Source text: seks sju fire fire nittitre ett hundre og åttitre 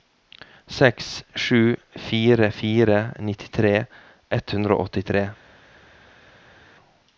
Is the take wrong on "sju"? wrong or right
right